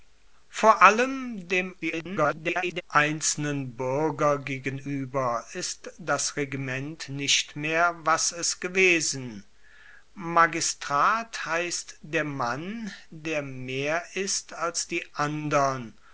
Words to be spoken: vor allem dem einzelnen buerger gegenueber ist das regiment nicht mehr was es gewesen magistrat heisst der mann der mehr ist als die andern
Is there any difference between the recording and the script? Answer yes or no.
yes